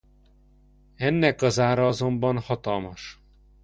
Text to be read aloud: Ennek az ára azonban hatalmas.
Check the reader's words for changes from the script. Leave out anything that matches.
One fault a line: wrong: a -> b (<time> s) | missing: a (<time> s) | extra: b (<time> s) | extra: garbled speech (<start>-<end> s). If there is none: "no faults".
no faults